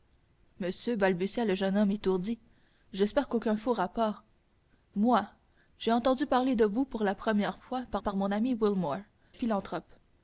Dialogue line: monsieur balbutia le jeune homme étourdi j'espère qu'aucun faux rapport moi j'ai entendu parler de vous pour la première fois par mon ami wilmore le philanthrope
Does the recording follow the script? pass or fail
fail